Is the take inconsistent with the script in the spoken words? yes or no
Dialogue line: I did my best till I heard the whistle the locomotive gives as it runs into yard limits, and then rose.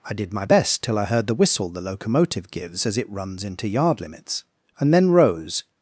no